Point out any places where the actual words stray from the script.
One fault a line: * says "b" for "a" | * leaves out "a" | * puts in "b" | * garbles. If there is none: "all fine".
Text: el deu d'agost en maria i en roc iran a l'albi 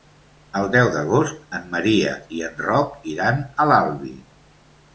all fine